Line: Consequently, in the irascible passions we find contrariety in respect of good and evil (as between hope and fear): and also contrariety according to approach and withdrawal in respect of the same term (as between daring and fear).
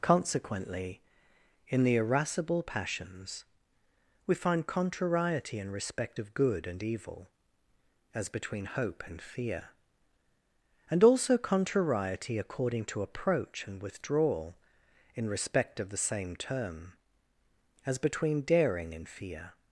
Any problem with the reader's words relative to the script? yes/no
no